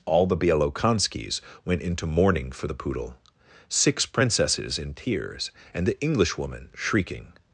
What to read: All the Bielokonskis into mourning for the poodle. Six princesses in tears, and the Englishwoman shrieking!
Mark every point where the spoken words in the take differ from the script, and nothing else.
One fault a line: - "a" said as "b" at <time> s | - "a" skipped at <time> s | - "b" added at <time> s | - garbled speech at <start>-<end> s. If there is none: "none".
- "went" added at 1.6 s